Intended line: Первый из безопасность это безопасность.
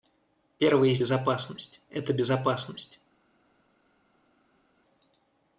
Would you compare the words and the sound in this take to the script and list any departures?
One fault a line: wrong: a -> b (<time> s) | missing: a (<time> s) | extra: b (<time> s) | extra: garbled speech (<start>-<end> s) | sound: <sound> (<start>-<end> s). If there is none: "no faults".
no faults